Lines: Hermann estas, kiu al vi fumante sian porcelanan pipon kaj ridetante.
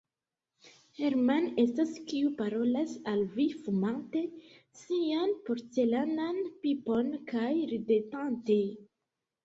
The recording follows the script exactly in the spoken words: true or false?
false